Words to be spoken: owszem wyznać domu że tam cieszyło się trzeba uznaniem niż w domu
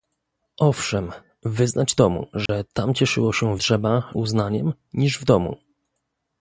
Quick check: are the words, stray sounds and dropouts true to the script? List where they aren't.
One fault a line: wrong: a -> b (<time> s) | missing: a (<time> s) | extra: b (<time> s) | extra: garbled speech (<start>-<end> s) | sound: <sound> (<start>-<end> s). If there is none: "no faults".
sound: dropout (2.5-2.5 s)